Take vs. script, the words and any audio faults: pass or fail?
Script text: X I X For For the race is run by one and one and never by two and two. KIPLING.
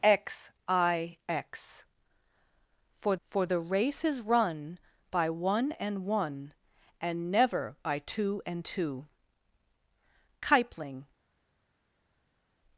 pass